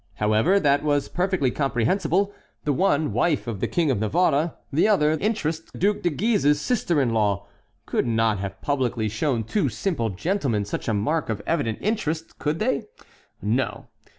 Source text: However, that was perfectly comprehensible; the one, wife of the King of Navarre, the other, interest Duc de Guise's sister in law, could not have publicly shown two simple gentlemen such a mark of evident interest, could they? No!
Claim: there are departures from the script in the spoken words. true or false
false